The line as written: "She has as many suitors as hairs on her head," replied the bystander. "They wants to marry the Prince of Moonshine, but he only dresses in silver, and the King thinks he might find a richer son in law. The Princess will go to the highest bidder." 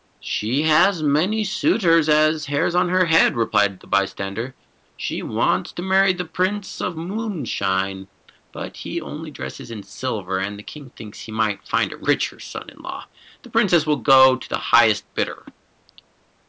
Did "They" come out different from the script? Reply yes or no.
yes